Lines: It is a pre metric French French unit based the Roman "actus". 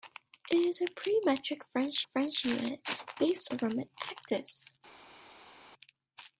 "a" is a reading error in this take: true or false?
false